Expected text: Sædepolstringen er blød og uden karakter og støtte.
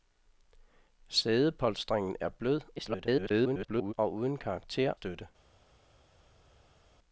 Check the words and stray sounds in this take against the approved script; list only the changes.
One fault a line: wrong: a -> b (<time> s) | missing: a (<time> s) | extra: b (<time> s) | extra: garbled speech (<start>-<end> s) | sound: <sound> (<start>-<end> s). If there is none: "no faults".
extra: garbled speech (2.8-3.9 s)
missing: og (4.9 s)